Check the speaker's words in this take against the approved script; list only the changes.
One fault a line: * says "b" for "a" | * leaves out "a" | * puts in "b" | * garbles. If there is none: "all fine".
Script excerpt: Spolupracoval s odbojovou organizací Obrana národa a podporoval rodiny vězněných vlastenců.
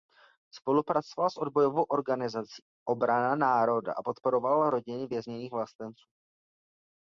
all fine